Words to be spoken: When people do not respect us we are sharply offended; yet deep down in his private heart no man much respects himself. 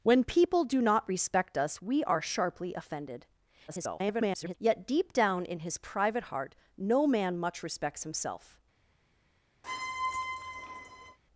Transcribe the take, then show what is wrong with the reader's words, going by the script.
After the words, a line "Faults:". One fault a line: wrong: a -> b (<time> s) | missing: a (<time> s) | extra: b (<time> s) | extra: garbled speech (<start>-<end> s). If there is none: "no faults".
When people do not respect us we are sharply offended; [garbled] yet deep down in his private heart no man much respects himself.
Faults:
extra: garbled speech (3.7-4.5 s)